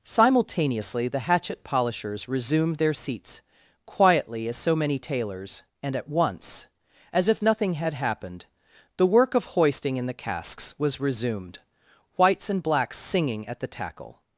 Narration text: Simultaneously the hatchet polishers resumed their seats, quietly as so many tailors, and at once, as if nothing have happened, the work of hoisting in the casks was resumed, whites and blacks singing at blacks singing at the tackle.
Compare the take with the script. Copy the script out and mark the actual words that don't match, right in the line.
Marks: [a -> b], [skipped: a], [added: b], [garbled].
Simultaneously the hatchet polishers resumed their seats, quietly as so many tailors, and at once, as if nothing [have -> had] happened, the work of hoisting in the casks was resumed, whites and blacks singing at [skipped: blacks singing at] the tackle.